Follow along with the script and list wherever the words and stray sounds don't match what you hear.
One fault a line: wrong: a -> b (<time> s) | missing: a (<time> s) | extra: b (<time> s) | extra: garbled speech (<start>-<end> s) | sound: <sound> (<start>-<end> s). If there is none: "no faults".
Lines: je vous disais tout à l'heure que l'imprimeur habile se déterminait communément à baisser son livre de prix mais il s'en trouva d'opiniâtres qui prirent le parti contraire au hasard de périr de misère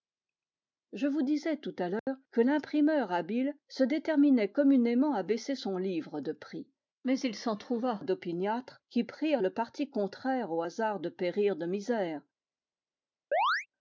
sound: dropout (2.0-2.1 s)
sound: chirp (13.3-13.7 s)